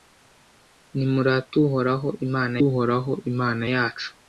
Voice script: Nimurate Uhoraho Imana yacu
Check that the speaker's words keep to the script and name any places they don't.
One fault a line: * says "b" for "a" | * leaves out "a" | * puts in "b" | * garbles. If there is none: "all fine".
* puts in "Uhoraho Imana"